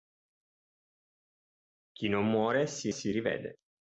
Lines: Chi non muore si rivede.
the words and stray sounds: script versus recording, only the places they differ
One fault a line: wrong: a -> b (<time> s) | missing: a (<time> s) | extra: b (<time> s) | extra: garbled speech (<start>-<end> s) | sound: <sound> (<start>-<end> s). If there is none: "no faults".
extra: si (2.9 s)